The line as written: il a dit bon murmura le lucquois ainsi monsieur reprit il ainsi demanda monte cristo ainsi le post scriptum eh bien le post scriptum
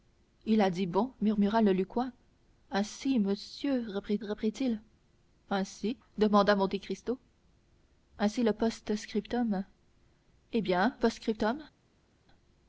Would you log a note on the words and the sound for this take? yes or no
yes